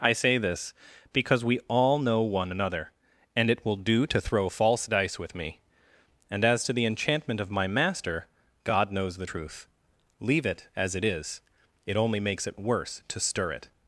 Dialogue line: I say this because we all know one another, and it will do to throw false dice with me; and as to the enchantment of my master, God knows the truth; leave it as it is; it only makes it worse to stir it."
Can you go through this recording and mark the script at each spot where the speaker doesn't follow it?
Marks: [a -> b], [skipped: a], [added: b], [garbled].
I say this because we all know one another, and it will do to throw false dice with me; and as to the enchantment of my master, God knows the truth; leave it as it is; it only makes it worse to stir it."